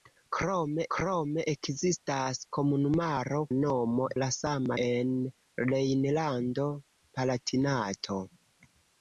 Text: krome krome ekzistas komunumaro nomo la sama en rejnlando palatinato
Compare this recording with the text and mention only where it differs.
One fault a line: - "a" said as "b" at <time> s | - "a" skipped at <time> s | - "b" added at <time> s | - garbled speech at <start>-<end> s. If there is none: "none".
none